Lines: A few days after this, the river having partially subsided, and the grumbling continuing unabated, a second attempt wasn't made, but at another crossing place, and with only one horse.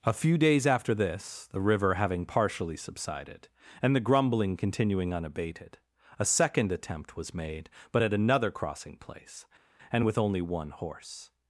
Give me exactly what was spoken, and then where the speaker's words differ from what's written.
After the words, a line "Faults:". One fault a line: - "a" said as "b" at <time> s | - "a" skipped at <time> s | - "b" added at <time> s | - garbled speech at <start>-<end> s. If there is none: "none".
A few days after this, the river having partially subsided, and the grumbling continuing unabated, a second attempt was made, but at another crossing place, and with only one horse.
Faults:
- "wasn't" said as "was" at 7.2 s